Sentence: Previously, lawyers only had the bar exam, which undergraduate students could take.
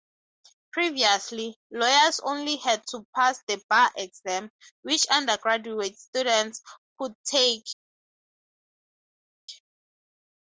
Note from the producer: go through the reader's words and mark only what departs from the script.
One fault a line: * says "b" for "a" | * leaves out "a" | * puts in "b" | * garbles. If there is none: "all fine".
* puts in "to pass"